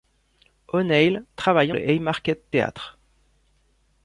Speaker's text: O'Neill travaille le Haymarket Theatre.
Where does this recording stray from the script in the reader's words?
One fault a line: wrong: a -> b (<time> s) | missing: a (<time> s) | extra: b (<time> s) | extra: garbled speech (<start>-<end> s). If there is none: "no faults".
no faults